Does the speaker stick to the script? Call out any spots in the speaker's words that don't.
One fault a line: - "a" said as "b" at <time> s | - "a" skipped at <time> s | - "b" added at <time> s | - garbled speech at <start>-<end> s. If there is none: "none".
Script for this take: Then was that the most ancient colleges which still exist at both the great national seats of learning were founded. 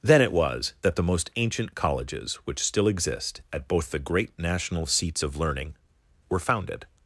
- "it" added at 0.2 s